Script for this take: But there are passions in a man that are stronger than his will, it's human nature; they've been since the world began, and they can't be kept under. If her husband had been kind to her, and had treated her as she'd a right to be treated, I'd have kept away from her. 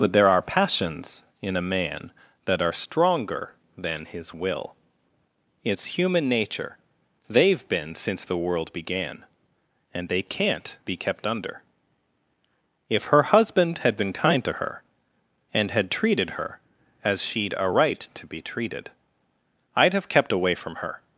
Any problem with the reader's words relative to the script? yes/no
no